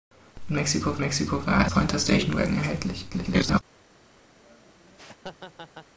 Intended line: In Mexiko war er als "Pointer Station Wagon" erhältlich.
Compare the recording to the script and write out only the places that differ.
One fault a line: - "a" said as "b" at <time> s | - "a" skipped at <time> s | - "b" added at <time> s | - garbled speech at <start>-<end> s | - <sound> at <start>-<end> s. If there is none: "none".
- "Mexiko" added at 1.0 s
- "als" skipped at 1.7 s
- garbled speech at 3.1-3.6 s
- laugh at 4.4-5.9 s